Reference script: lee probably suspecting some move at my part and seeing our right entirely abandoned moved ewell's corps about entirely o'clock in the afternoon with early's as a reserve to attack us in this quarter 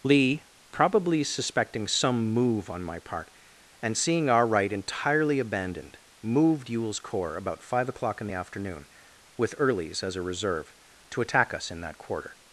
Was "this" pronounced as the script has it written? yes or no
no